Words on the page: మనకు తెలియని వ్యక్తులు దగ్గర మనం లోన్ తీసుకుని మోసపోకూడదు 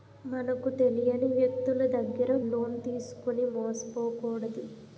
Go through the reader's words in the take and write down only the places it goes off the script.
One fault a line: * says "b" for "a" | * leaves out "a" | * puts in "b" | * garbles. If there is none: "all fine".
* leaves out "మనం"